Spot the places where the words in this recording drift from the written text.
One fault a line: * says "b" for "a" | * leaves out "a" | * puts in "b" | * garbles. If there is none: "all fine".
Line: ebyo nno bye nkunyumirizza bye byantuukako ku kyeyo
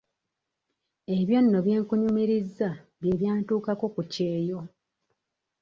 all fine